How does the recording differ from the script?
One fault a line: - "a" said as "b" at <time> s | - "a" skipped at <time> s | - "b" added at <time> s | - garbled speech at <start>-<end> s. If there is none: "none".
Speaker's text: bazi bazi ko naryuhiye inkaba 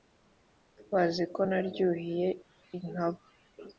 - "bazi" skipped at 1.2 s